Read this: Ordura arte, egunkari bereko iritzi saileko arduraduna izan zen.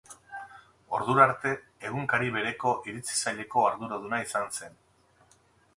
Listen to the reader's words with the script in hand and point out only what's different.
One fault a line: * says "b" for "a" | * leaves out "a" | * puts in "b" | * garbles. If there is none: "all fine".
all fine